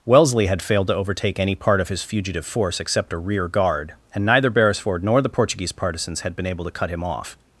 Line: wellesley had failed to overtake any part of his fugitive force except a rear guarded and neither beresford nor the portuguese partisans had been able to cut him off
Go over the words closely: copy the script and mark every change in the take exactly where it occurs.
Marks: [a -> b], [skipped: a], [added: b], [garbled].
wellesley had failed to overtake any part of his fugitive force except a rear [guarded -> guard] and neither beresford nor the portuguese partisans had been able to cut him off